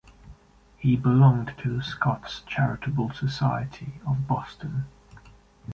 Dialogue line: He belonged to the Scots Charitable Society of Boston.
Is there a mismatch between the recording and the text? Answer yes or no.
no